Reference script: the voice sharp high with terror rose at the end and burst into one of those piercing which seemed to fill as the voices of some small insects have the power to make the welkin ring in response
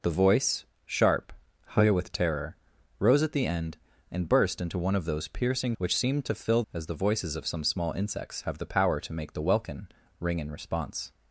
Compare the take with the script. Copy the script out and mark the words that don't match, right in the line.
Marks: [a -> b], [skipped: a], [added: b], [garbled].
the voice sharp high with terror rose at the end and burst into one of those piercing which seemed to fill as the voices of some small insects have the power to make the welkin ring in response